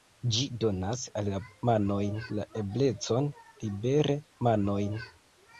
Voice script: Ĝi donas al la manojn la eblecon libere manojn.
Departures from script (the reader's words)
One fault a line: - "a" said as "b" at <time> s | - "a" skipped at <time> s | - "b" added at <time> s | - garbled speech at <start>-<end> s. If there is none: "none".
none